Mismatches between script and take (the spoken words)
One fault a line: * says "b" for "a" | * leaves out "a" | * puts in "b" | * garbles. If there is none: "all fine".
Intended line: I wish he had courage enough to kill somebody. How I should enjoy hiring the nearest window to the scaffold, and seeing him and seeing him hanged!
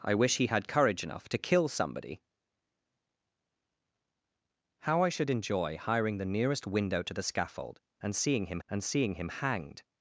all fine